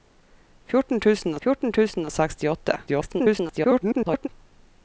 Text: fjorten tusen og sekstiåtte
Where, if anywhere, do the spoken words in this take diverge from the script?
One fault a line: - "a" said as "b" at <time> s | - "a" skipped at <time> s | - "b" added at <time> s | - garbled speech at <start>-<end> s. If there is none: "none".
- "fjorten tusen" added at 1.4 s
- garbled speech at 2.9-4.3 s